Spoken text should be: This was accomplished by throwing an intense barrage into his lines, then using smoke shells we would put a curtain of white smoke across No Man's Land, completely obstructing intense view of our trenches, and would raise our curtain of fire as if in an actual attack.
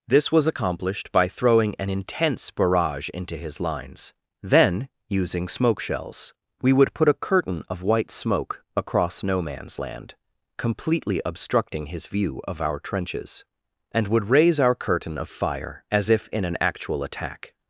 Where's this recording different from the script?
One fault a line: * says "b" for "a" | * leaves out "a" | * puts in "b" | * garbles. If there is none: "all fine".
* says "his" for "intense"